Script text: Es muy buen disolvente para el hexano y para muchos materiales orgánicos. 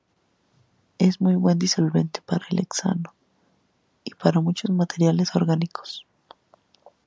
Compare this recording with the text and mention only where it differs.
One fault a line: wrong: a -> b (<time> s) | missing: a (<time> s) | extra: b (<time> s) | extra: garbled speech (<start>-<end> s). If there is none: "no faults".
no faults